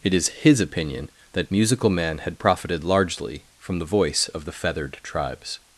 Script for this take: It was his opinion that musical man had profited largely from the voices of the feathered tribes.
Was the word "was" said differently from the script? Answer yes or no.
yes